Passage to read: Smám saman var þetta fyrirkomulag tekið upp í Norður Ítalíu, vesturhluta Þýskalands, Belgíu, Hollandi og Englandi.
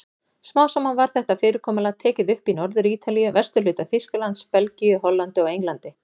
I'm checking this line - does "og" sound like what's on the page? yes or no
yes